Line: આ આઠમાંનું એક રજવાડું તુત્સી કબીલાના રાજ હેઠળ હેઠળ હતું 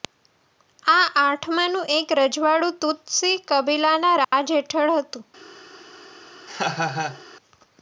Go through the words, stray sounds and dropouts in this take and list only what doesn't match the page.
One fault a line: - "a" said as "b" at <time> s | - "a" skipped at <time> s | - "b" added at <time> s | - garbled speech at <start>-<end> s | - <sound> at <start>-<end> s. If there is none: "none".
- dropout at 4.2-4.3 s
- "હેઠળ" skipped at 5.0 s
- laugh at 6.5-7.2 s